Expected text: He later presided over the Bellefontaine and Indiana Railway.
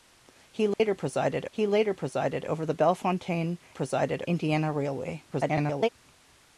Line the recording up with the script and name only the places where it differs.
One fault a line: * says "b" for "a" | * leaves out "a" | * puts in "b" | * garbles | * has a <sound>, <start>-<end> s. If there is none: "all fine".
* has a dropout, 0.7-0.8 s
* puts in "he later presided"
* says "presided" for "and"
* garbles